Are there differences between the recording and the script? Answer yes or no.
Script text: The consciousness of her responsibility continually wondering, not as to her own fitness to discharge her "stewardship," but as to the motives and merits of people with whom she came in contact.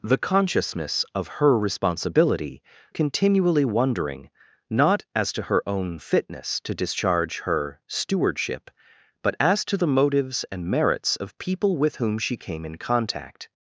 no